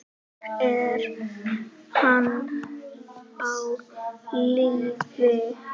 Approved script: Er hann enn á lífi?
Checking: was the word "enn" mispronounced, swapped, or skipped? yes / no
yes